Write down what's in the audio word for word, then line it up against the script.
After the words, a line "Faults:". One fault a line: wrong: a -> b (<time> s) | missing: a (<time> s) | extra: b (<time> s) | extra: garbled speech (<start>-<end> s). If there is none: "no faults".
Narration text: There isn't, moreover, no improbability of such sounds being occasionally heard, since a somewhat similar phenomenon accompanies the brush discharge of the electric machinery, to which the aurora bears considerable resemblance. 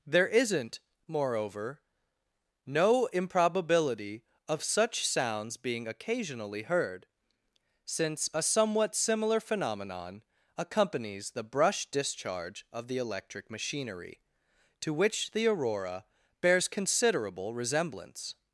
There isn't, moreover, no improbability of such sounds being occasionally heard, since a somewhat similar phenomenon accompanies the brush discharge of the electric machinery, to which the aurora bears considerable resemblance.
Faults:
no faults